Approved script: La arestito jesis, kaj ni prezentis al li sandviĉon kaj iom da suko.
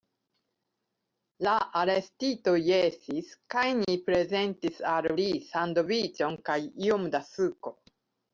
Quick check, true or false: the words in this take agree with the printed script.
true